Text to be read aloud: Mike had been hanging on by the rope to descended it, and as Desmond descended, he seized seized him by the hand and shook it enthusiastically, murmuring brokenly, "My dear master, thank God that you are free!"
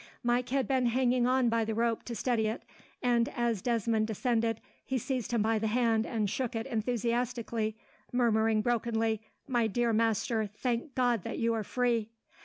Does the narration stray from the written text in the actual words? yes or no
yes